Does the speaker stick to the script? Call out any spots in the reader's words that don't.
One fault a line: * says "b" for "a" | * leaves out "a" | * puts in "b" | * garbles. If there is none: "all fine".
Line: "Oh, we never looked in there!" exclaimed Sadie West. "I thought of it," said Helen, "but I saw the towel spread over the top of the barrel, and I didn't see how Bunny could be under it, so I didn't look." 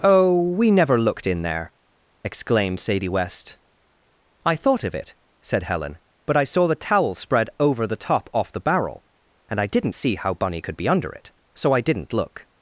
* says "off" for "of"